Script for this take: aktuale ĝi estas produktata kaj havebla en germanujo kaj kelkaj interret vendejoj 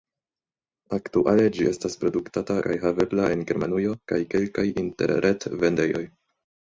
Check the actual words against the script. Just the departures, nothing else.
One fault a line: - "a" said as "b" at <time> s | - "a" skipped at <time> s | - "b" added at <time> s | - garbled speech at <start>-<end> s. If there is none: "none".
none